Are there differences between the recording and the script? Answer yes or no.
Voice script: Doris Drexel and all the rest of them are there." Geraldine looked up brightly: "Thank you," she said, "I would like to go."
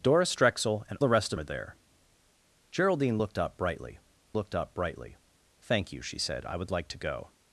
yes